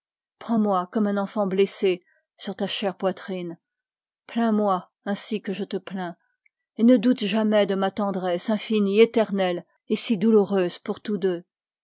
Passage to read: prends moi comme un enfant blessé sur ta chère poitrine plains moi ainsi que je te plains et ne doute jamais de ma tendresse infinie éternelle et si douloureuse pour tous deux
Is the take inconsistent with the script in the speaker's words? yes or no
no